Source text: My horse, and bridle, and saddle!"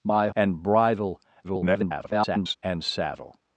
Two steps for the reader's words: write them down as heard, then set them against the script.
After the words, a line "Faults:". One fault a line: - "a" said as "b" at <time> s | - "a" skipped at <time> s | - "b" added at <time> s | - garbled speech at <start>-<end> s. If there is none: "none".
My and bridle, [garbled] and saddle!"
Faults:
- "horse" skipped at 0.3 s
- garbled speech at 1.4-2.6 s